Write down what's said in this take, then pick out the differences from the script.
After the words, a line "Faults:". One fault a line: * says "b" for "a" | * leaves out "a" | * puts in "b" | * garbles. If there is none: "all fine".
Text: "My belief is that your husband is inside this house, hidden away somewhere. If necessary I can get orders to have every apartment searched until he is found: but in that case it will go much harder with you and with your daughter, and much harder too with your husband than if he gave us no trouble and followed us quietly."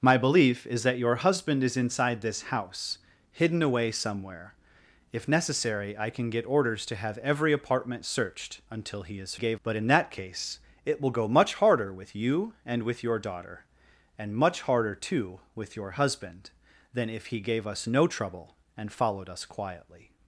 "My belief is that your husband is inside this house, hidden away somewhere. If necessary I can get orders to have every apartment searched until he is gave: but in that case it will go much harder with you and with your daughter, and much harder too with your husband than if he gave us no trouble and followed us quietly."
Faults:
* says "gave" for "found"